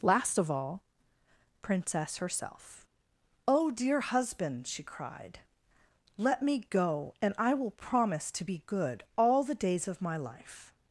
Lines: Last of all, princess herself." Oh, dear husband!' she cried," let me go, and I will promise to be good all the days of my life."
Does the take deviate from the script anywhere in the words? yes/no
no